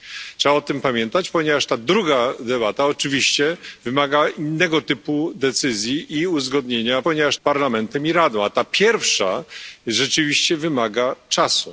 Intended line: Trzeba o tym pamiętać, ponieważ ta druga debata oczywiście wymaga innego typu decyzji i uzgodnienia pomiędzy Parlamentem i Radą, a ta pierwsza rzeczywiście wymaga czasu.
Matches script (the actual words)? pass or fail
fail